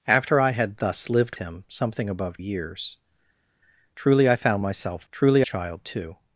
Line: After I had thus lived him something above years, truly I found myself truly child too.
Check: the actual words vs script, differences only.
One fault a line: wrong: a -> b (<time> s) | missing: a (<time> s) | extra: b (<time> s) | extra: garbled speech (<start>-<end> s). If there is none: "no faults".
no faults